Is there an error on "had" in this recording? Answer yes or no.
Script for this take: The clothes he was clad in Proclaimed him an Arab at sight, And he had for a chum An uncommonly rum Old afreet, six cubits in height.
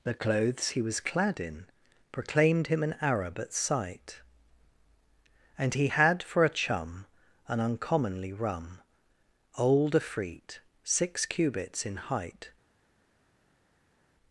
no